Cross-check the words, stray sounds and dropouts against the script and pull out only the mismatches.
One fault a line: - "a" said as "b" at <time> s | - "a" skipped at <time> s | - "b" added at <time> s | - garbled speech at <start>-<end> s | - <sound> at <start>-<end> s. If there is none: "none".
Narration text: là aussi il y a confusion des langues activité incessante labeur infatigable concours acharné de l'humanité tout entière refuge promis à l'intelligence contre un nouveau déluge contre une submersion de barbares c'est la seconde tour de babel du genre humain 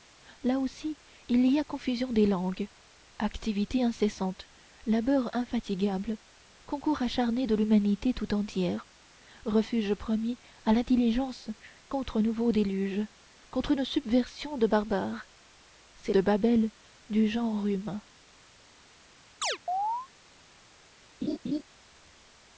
- "la seconde tour" skipped at 16.1 s
- chirp at 19.4-20.1 s
- laugh at 21.2-21.6 s